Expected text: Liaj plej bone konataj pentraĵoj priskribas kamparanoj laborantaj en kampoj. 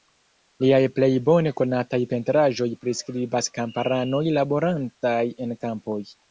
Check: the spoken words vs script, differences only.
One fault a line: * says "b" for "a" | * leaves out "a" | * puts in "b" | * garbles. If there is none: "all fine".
all fine